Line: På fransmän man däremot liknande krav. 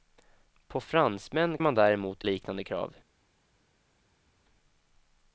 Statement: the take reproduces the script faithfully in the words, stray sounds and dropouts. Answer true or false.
true